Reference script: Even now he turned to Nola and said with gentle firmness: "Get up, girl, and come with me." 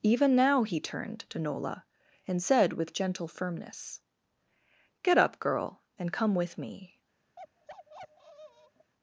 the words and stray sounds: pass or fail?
fail